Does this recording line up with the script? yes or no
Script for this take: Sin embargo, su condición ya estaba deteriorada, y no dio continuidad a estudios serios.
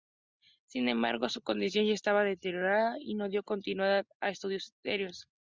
yes